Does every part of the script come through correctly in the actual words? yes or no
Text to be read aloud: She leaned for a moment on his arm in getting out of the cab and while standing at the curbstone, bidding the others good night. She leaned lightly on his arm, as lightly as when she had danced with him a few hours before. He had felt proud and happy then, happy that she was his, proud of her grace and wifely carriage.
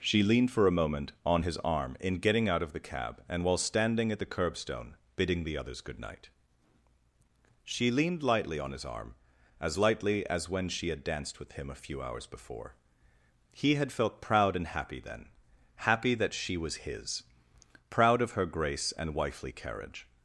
yes